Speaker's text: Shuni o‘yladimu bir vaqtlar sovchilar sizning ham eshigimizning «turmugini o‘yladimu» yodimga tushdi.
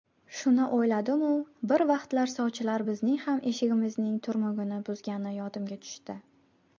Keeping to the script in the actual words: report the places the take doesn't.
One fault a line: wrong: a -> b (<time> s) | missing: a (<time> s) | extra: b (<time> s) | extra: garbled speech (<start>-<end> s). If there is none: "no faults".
wrong: sizning -> bizning (2.9 s)
wrong: o‘yladimu -> buzgani (4.9 s)